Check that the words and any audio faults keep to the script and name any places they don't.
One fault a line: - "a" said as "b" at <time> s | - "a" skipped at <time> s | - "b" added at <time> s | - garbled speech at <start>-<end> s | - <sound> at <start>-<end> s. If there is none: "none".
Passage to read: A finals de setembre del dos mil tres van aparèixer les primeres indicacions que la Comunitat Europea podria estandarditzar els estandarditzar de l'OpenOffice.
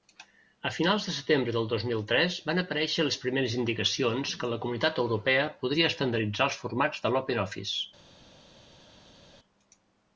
- "estandarditzar" said as "formats" at 6.6 s